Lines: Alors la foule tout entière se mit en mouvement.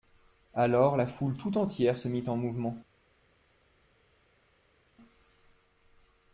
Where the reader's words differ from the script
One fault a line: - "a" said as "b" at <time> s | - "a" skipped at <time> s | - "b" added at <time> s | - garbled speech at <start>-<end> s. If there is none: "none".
none